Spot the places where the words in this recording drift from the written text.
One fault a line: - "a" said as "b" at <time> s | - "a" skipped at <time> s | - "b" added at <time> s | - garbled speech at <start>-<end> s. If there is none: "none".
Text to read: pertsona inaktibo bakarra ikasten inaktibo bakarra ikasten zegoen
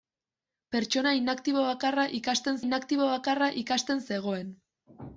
none